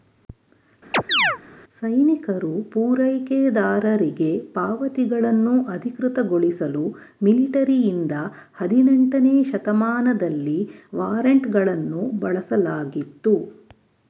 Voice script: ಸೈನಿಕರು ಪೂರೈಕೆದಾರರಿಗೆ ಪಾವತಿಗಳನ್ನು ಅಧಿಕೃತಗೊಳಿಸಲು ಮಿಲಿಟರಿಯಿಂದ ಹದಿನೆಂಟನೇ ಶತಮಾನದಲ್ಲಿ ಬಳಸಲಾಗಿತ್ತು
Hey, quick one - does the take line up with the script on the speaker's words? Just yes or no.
no